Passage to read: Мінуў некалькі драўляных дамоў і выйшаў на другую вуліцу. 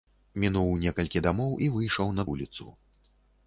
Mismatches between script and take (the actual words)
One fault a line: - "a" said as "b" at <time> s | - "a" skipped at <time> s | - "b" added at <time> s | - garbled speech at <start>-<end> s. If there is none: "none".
- "драўляных" skipped at 1.2 s
- "другую" skipped at 2.2 s